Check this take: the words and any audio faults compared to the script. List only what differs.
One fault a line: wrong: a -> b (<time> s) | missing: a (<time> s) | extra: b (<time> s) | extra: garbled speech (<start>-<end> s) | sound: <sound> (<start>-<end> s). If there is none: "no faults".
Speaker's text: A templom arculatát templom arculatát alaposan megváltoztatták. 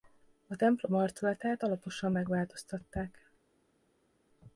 missing: templom arculatát (1.6 s)